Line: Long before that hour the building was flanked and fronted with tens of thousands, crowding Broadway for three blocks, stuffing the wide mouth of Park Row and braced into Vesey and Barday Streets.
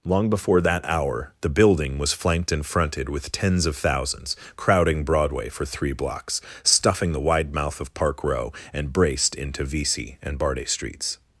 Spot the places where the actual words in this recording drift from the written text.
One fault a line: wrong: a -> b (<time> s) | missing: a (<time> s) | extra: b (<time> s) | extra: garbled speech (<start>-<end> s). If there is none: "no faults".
no faults